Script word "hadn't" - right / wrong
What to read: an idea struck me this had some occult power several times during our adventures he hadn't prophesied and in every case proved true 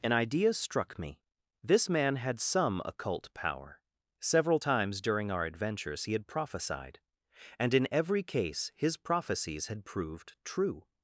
wrong